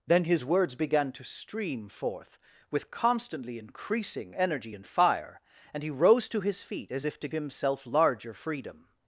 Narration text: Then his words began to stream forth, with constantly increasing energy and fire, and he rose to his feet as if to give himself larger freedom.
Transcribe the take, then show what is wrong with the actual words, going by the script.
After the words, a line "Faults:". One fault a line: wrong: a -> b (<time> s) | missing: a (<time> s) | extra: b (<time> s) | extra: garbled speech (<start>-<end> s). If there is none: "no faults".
Then his words began to stream forth, with constantly increasing energy and fire, and he rose to his feet as if to himself larger freedom.
Faults:
missing: give (7.3 s)